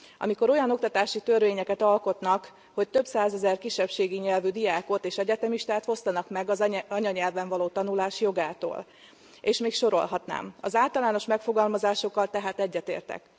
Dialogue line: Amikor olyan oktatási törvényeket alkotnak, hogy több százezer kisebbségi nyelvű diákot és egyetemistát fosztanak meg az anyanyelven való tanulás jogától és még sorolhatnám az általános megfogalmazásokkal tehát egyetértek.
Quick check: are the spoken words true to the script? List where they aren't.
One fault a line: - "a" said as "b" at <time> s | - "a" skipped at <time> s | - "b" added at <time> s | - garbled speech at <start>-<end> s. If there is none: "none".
none